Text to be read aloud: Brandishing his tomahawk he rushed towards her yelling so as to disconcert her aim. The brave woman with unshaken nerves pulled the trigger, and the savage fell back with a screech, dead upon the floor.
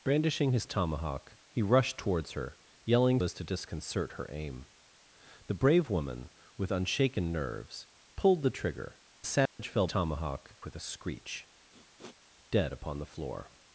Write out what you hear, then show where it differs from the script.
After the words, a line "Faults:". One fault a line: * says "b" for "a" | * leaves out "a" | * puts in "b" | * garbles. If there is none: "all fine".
Brandishing his tomahawk he rushed towards her yelling as to disconcert her aim. The brave woman with unshaken nerves pulled the trigger, the savage fell tomahawk with a screech, dead upon the floor.
Faults:
* leaves out "so"
* leaves out "and"
* says "tomahawk" for "back"